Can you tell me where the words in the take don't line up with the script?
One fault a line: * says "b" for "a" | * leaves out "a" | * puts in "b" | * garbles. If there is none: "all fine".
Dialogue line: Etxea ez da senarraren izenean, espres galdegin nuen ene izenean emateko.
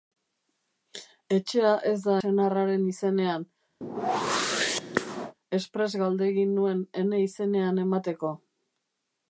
all fine